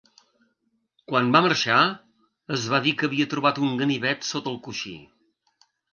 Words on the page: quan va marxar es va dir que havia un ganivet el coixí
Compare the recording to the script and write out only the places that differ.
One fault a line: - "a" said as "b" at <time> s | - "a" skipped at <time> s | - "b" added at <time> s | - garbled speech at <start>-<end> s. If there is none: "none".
- "trobat" added at 3.4 s
- "sota" added at 4.3 s